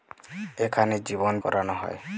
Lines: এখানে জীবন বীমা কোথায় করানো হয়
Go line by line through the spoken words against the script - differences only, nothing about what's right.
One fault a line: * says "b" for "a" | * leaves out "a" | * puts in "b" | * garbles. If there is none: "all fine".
* leaves out "বীমা কোথায়"